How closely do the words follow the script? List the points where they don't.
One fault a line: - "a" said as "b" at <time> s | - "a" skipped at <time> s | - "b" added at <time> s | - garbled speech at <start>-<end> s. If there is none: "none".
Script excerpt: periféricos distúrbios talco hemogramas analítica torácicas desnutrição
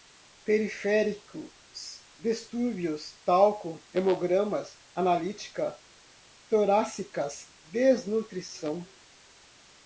none